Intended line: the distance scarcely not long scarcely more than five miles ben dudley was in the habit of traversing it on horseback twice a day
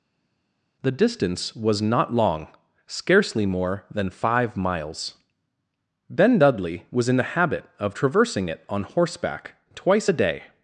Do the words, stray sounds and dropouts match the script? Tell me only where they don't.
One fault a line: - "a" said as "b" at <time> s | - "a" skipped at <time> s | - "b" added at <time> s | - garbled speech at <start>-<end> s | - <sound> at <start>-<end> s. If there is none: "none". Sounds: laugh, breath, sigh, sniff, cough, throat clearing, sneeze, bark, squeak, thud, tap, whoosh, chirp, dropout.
- "scarcely" said as "was" at 1.6 s